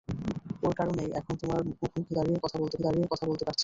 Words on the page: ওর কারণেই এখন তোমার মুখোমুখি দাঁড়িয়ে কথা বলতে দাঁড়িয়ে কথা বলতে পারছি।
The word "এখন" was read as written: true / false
true